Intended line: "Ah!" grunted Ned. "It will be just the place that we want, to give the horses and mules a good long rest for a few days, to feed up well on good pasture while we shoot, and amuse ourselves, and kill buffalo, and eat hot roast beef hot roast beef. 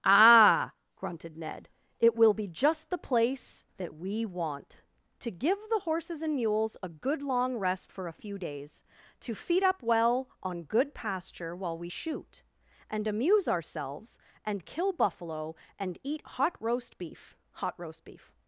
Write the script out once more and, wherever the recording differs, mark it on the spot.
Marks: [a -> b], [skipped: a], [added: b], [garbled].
"Ah!" grunted Ned. "It will be just the place that we want, to give the horses and mules a good long rest for a few days, to feed up well on good pasture while we shoot, and amuse ourselves, and kill buffalo, and eat hot roast beef hot roast beef.